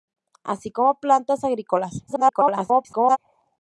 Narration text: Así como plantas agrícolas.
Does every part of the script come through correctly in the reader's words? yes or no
no